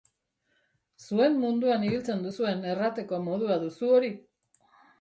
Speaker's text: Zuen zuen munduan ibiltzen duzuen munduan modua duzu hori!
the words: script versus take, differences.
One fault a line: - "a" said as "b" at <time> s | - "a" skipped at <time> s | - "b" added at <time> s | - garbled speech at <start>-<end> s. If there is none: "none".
- "zuen" skipped at 1.4 s
- "munduan" said as "errateko" at 2.8 s